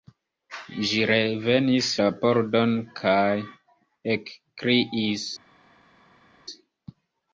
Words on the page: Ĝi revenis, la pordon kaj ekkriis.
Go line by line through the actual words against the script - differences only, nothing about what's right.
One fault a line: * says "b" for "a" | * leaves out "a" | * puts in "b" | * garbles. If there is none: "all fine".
all fine